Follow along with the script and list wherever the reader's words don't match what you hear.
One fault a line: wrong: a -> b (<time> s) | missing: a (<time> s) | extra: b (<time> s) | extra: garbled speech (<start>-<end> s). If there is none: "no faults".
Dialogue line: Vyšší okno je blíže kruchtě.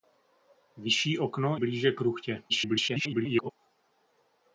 missing: je (1.6 s)
extra: garbled speech (2.5-3.5 s)